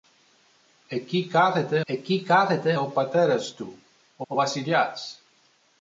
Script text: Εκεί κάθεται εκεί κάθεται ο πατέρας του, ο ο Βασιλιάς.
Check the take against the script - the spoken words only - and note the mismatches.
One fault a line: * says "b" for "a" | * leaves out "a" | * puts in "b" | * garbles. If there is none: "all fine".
all fine